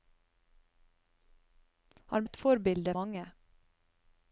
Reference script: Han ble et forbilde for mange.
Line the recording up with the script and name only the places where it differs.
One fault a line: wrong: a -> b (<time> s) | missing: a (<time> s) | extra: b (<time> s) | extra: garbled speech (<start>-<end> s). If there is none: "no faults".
missing: ble (2.2 s)
missing: for (2.9 s)